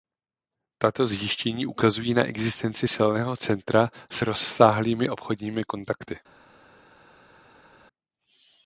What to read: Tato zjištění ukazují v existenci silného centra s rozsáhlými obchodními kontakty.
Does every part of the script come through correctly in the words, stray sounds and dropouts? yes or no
no